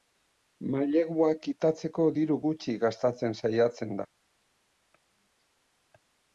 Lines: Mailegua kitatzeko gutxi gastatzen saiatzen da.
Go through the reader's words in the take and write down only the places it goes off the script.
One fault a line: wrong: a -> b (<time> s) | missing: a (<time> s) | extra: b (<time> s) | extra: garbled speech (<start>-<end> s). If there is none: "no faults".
extra: diru (2.2 s)